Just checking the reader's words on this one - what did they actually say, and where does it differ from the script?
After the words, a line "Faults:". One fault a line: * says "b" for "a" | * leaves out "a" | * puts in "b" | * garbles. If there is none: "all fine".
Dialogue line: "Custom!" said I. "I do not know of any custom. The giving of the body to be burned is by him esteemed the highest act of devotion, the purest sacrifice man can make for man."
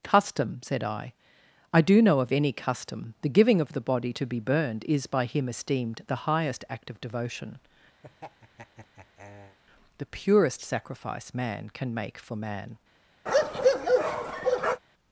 "Custom!" said I. "I do know of any custom. The giving of the body to be burned is by him esteemed the highest act of devotion, the purest sacrifice man can make for man."
Faults:
* leaves out "not"